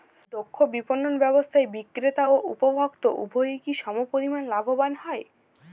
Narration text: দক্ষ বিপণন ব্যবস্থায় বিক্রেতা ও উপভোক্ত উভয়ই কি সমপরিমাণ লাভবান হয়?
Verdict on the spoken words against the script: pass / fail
pass